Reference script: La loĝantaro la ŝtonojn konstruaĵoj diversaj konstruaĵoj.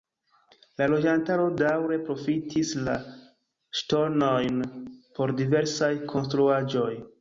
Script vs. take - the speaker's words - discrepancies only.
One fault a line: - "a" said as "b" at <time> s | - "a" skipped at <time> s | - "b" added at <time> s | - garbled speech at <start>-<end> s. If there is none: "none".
- "daŭre profitis" added at 1.6 s
- "konstruaĵoj" said as "por" at 5.2 s